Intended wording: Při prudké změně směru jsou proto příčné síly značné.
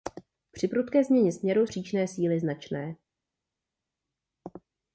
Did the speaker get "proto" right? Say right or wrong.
wrong